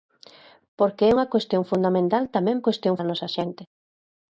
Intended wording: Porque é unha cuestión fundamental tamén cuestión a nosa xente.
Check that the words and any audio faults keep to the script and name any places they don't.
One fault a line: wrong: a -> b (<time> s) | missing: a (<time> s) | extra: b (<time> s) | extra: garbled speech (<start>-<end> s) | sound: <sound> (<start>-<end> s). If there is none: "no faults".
no faults